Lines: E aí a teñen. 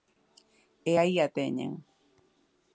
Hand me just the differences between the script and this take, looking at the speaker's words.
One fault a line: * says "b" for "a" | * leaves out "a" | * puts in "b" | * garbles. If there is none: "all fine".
all fine